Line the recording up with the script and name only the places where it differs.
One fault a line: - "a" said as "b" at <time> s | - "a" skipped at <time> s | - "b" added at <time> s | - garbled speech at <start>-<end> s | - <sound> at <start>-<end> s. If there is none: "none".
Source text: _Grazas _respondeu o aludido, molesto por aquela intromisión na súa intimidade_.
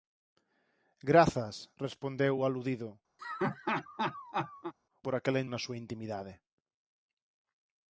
- "molesto" skipped at 2.9 s
- laugh at 3.2-4.7 s
- "intromisión" skipped at 5.4 s